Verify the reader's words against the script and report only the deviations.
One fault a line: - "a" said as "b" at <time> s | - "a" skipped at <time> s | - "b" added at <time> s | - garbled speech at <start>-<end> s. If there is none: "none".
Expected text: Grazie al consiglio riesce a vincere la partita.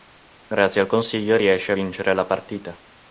none